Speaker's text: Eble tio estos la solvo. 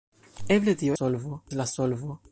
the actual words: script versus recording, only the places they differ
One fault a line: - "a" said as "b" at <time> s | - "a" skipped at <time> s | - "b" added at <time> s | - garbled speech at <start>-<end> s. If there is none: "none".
- "estos" said as "solvo" at 0.9 s